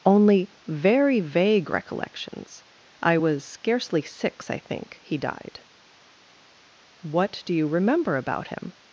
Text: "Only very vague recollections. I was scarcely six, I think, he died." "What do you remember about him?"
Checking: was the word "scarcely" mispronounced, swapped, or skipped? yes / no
no